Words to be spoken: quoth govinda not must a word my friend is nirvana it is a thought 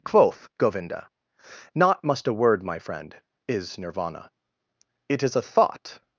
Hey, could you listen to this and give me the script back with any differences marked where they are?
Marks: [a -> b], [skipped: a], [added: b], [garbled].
quoth govinda not must a word my friend is nirvana it is a thought